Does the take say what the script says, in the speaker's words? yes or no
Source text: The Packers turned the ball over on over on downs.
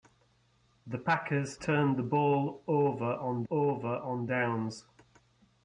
yes